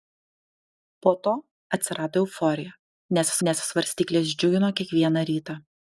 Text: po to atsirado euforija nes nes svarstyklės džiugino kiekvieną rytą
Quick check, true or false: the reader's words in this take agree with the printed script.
true